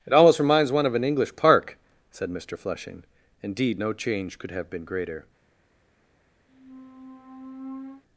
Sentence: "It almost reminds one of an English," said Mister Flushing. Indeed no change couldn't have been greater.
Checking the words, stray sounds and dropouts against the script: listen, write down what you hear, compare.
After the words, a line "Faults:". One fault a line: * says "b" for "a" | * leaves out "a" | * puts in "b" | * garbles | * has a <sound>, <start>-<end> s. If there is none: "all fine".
"It almost reminds one of an English park," said Mister Flushing. Indeed no change could have been greater.
Faults:
* puts in "park"
* says "could" for "couldn't"
* has a squeak, 6.5-8.0 s